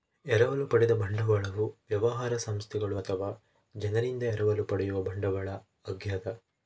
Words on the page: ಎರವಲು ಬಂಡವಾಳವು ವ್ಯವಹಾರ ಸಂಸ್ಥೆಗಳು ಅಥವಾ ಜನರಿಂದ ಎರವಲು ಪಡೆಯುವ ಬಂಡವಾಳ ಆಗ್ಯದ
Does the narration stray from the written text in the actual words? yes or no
yes